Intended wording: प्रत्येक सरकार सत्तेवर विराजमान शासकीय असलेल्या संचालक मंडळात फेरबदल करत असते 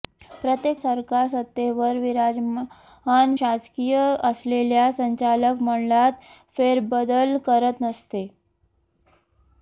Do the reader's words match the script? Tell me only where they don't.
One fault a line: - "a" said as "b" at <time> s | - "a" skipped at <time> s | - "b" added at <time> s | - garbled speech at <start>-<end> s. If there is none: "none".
none